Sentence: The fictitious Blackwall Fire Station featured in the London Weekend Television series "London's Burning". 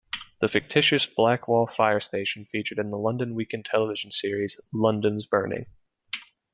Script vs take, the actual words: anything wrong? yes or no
no